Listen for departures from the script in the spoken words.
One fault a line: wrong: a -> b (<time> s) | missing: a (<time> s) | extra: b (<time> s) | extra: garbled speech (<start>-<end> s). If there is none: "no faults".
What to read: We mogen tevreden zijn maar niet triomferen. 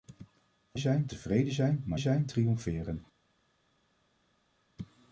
wrong: mogen -> zijn (0.8 s)
wrong: niet -> zijn (2.0 s)